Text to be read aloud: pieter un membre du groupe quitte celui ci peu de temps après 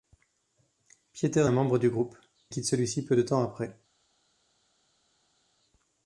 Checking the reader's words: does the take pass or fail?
pass